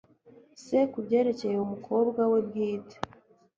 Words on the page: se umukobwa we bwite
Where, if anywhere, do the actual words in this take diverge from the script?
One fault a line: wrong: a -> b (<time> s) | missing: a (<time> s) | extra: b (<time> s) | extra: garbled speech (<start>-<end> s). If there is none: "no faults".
extra: kubyerekeye (0.9 s)